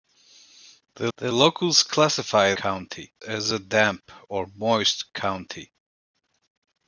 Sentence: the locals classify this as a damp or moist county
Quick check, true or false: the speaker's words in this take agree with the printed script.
false